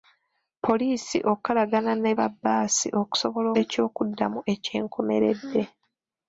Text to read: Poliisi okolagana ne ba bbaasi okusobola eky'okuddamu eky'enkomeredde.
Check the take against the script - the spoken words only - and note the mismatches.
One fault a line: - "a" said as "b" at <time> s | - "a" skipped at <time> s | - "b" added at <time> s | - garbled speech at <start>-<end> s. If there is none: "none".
none